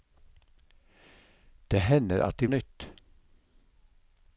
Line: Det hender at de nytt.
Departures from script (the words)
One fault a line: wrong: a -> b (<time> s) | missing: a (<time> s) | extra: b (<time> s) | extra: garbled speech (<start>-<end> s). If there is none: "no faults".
no faults